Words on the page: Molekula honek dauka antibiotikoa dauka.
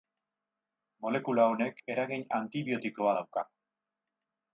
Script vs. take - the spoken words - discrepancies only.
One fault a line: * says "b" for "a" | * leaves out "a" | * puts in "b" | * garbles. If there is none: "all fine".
* says "eragin" for "dauka"